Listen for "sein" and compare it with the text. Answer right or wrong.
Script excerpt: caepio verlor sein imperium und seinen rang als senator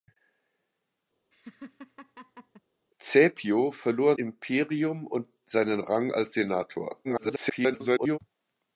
wrong